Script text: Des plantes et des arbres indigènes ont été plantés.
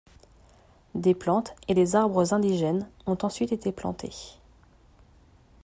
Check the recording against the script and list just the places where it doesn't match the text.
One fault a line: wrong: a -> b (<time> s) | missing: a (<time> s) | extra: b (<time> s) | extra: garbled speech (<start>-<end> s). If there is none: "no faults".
extra: ensuite (3.2 s)